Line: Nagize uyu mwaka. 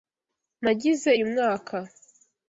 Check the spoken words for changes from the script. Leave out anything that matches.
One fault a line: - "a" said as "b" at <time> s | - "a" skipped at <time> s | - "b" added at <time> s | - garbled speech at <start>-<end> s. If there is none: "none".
none